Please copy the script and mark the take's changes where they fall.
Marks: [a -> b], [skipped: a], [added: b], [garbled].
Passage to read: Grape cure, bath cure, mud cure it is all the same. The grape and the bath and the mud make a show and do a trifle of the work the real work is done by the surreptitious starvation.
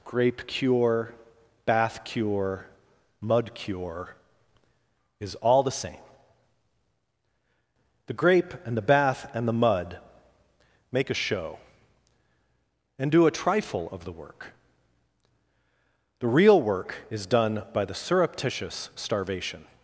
Grape cure, bath cure, mud cure [skipped: it] is all the same. The grape and the bath and the mud make a show and do a trifle of the work the real work is done by the surreptitious starvation.